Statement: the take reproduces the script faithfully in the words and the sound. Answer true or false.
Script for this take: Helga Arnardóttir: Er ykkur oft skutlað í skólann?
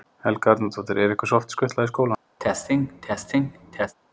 false